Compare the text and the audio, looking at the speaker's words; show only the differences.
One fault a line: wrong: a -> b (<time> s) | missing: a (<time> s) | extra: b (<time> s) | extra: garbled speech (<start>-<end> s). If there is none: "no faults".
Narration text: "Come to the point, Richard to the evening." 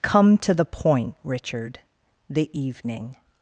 missing: to (1.8 s)